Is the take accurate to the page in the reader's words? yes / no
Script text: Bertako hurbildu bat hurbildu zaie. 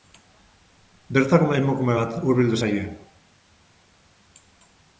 no